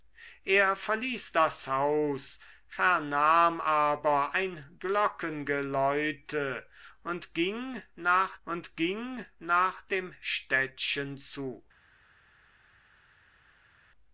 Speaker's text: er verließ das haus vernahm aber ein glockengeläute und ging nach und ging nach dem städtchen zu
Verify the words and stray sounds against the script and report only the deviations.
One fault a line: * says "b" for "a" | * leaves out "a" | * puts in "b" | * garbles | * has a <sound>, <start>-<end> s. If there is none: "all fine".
all fine